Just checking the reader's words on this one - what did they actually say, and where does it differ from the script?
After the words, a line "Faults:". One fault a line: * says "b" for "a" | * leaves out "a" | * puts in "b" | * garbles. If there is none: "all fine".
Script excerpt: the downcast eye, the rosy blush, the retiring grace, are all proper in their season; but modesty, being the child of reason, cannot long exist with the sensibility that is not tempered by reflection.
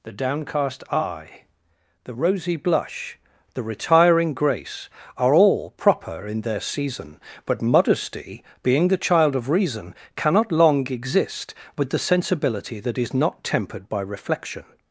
the downcast eye, the rosy blush, the retiring grace, are all proper in their season; but modesty, being the child of reason, cannot long exist with the sensibility that is not tempered by reflection.
Faults:
all fine